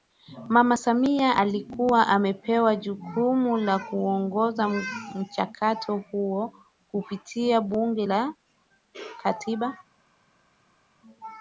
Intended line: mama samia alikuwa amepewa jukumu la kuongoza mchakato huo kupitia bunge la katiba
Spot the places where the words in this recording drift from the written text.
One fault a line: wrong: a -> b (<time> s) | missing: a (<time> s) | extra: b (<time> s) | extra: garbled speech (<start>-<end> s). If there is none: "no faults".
no faults